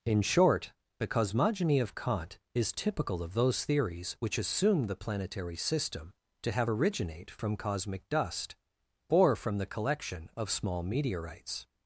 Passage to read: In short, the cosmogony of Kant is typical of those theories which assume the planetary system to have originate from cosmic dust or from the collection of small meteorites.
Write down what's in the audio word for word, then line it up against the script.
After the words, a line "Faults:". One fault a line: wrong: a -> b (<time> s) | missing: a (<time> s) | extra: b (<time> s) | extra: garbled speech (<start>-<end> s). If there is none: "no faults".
In short, the cosmogony of Kant is typical of those theories which assume the planetary system to have originate from cosmic dust or from the collection of small meteorites.
Faults:
no faults